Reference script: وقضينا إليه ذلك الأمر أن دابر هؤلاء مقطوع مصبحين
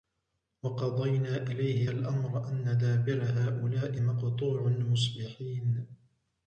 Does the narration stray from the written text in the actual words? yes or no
yes